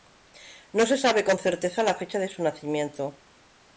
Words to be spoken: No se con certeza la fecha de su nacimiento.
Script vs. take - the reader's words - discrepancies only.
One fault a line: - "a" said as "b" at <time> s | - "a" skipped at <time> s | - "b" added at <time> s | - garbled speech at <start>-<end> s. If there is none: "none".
- "sabe" added at 1.0 s